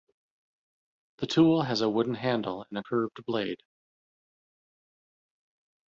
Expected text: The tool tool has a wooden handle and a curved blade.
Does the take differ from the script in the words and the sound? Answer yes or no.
yes